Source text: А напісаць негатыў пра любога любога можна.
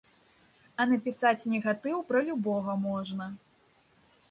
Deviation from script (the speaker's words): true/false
true